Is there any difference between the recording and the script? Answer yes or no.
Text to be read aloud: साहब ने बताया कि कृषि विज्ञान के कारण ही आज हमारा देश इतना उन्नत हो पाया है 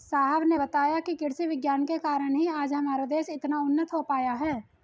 no